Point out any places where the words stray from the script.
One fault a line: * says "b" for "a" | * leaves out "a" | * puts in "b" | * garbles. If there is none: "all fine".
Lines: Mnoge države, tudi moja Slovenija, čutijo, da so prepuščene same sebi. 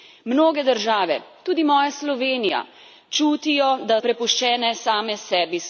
* leaves out "so"